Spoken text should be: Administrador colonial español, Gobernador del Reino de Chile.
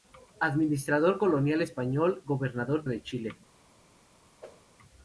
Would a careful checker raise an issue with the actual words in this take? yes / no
yes